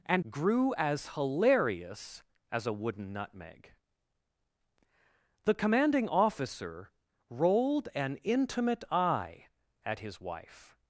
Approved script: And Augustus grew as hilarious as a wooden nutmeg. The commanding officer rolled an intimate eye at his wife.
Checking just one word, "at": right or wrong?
right